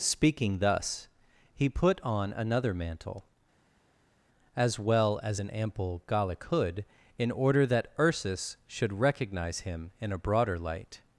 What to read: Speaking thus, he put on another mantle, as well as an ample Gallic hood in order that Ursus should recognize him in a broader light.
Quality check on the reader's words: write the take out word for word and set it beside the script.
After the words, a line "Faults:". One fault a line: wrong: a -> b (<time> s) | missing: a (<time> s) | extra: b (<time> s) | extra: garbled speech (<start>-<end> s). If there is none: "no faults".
Speaking thus, he put on another mantle, as well as an ample Gallic hood in order that Ursus should recognize him in a broader light.
Faults:
no faults